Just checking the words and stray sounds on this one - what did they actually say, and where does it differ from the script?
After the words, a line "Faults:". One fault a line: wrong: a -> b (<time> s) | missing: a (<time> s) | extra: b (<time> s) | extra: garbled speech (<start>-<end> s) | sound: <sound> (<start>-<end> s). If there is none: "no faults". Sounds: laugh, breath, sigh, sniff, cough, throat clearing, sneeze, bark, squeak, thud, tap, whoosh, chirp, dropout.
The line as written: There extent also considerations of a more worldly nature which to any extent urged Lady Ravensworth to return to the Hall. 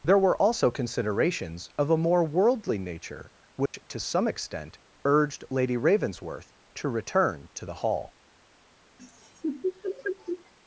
There were also considerations of a more worldly nature which to some extent urged Lady Ravensworth to return to the Hall.
Faults:
wrong: extent -> were (0.2 s)
sound: dropout (3.7-3.7 s)
wrong: any -> some (4.0 s)
sound: laugh (9.0-10.5 s)